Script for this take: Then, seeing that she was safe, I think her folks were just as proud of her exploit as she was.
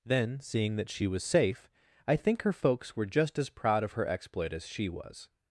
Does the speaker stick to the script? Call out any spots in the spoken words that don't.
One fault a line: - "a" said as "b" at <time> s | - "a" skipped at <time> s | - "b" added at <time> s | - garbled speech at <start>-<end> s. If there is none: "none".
none